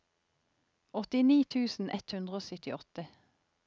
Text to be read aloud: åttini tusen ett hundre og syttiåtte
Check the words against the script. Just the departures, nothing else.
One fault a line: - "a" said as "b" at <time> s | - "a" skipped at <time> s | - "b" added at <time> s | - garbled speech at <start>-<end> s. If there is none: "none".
none